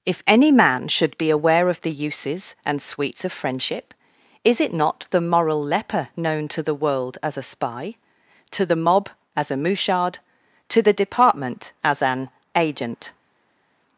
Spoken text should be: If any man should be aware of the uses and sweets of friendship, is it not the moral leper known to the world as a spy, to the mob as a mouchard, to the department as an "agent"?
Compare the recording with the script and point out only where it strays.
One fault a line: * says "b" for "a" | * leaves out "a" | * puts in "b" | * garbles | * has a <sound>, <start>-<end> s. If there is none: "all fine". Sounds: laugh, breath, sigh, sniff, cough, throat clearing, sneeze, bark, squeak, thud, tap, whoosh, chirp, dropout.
all fine